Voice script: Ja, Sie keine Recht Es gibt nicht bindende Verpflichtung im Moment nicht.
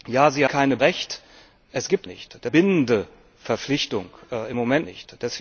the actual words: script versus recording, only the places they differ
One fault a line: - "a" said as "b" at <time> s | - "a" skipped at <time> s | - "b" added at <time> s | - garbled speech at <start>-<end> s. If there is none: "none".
none